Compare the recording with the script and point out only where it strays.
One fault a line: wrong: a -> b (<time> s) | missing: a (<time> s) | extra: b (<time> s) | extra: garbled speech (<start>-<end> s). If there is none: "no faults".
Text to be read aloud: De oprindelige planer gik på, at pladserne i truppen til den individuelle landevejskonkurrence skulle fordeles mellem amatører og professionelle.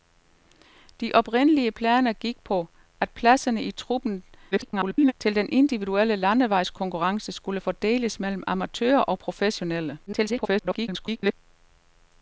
extra: garbled speech (4.5-5.1 s)
extra: garbled speech (10.1-11.3 s)